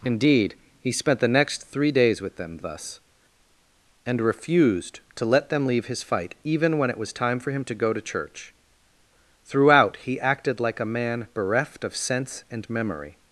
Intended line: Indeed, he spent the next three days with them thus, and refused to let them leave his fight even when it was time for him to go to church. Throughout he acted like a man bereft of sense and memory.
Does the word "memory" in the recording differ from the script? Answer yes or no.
no